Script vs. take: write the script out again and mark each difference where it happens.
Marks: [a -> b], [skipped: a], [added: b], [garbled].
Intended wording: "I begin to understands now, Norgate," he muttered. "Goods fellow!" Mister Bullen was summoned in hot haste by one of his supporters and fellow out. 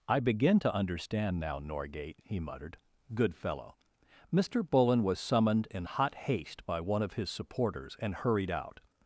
"I begin to [understands -> understand] now, Norgate," he muttered. ["Goods -> Good] fellow!" Mister Bullen was summoned in hot haste by one of his supporters and [fellow -> hurried] out.